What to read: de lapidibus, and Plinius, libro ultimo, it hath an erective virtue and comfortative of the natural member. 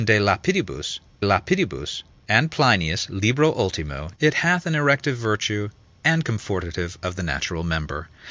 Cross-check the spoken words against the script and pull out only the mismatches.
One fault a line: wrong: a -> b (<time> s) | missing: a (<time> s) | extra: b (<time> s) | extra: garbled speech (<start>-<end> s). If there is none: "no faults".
extra: lapidibus (1.2 s)